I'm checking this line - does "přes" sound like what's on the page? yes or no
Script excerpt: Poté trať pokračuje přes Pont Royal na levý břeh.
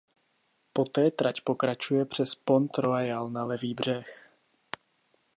yes